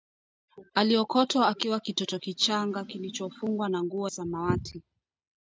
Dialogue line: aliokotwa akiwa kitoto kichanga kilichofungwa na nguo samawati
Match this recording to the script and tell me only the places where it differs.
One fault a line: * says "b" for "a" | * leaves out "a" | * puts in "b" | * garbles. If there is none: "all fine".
all fine